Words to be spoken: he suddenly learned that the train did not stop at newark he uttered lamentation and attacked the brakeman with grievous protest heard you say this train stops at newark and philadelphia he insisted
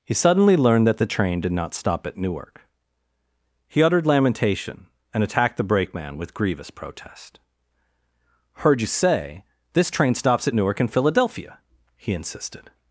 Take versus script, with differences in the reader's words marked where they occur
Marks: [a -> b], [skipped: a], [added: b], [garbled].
he suddenly learned that the train did not stop at newark he uttered lamentation and attacked the brakeman with grievous protest heard you say this train stops at newark and philadelphia he insisted